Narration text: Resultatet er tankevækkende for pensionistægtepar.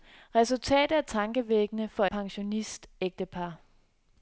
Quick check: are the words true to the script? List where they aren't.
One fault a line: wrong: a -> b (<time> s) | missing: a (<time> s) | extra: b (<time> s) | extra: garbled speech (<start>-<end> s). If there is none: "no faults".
no faults